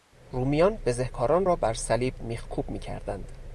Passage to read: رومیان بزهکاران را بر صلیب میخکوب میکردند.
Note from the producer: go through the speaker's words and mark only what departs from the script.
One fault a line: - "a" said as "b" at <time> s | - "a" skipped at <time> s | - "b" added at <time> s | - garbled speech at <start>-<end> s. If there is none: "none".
none